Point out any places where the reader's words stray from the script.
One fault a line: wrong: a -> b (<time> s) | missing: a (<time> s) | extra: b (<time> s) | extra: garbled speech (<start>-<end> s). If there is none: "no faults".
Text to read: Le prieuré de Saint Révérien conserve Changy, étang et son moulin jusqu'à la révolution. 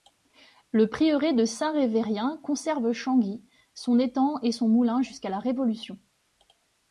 extra: son (3.8 s)